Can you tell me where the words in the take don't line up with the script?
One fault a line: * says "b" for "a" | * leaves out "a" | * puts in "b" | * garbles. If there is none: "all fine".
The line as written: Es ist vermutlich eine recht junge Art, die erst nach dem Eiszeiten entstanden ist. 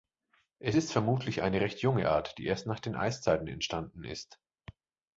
* says "den" for "dem"